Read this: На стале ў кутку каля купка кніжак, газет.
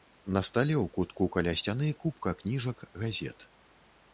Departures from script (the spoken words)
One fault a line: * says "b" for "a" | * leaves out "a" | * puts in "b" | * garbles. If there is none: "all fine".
* puts in "сцяны"